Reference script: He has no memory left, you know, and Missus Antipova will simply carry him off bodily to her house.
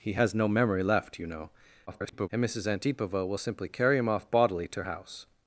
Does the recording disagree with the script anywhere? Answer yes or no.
yes